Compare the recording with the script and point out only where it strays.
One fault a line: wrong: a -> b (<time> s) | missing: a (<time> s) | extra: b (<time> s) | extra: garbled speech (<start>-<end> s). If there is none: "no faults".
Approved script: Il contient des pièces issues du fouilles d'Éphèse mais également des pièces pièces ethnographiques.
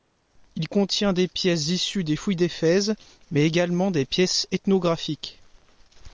wrong: du -> des (2.1 s)
missing: pièces (4.5 s)